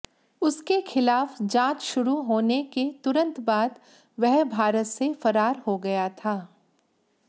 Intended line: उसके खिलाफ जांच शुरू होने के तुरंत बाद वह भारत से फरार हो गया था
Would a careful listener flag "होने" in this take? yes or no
no